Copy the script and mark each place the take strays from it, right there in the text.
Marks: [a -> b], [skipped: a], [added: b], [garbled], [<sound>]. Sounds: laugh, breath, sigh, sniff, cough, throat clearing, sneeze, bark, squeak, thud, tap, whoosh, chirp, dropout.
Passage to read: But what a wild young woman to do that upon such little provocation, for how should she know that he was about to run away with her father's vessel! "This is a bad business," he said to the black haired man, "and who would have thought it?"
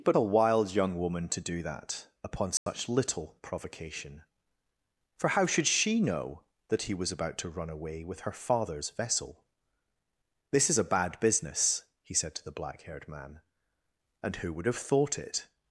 But [skipped: what] a wild young woman to do that upon such [dropout] little provocation, for how should she know that he was about to run away with her father's vessel! "This is a bad business," he said to the black haired man, "and who would have thought it?"